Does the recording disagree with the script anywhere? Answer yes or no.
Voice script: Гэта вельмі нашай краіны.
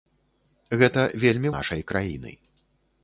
no